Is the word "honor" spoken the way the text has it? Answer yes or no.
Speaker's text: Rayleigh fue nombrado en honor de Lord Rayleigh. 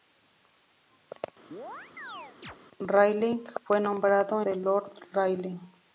no